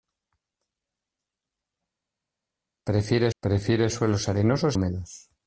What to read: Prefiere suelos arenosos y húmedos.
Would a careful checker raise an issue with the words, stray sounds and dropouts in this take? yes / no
yes